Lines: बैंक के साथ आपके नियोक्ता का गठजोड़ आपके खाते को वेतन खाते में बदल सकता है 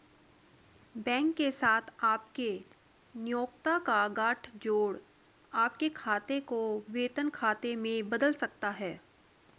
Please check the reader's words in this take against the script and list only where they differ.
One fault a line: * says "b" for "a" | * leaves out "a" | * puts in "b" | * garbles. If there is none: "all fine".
all fine